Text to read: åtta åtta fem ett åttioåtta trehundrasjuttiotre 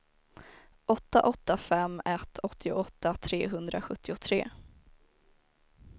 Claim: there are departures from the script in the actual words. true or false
false